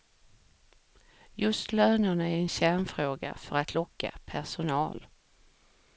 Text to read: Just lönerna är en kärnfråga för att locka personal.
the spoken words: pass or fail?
pass